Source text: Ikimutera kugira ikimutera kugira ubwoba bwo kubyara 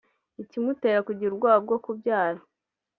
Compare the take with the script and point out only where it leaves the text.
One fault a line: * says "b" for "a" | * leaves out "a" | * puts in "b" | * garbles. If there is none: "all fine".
* leaves out "ikimutera kugira"